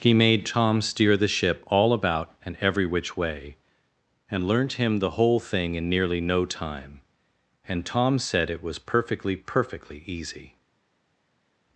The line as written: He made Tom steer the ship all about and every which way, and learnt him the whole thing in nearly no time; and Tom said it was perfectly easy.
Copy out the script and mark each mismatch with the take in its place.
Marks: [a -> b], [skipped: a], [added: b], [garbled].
He made Tom steer the ship all about and every which way, and learnt him the whole thing in nearly no time; and Tom said it was perfectly [added: perfectly] easy.